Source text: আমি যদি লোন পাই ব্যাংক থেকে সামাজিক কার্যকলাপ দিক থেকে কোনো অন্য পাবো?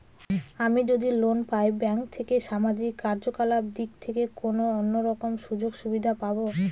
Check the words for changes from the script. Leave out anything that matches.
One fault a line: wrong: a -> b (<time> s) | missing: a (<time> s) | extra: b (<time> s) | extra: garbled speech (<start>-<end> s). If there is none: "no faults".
extra: রকম সুযোগ সুবিধা (5.1 s)